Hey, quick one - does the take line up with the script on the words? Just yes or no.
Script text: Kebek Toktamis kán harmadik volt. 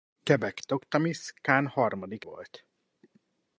yes